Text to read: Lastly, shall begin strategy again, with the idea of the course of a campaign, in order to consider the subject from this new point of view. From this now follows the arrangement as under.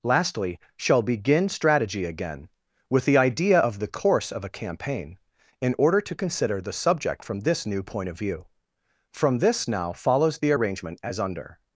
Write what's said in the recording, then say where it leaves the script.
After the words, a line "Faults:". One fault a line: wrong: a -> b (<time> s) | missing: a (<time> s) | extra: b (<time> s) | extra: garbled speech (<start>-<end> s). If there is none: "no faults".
Lastly, shall begin strategy again, with the idea of the course of a campaign, in order to consider the subject from this new point of view. From this now follows the arrangement as under.
Faults:
no faults